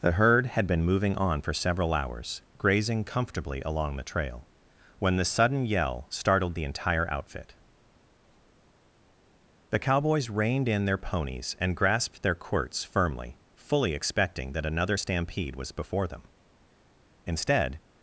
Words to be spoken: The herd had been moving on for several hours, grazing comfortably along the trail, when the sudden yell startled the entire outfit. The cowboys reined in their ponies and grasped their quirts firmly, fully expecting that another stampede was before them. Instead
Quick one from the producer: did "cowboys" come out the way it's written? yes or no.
yes